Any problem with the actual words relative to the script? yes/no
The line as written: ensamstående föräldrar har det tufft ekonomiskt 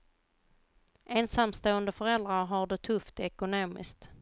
no